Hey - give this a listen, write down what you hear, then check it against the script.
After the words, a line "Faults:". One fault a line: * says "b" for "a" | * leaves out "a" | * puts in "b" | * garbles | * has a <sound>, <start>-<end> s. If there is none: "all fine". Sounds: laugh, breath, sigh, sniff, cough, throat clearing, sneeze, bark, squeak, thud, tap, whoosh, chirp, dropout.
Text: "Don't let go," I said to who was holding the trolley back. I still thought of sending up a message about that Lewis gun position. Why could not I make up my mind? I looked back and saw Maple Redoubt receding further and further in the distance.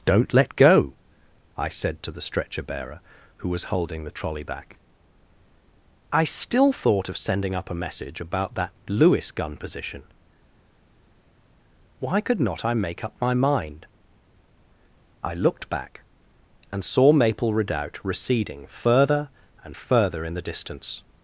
"Don't let go," I said to the stretcher bearer, who was holding the trolley back. I still thought of sending up a message about that Lewis gun position. Why could not I make up my mind? I looked back and saw Maple Redoubt receding further and further in the distance.
Faults:
* puts in "the stretcher bearer"